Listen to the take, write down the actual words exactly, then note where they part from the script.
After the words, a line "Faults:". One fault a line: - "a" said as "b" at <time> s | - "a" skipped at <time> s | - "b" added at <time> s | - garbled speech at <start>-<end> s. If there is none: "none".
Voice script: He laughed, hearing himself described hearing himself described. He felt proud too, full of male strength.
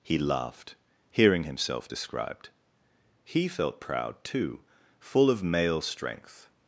He laughed, hearing himself described. He felt proud too, full of male strength.
Faults:
- "hearing himself described" skipped at 2.5 s